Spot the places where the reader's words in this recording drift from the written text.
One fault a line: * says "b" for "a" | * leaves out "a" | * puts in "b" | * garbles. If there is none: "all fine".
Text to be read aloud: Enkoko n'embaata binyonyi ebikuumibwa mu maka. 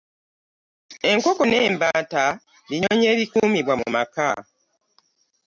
all fine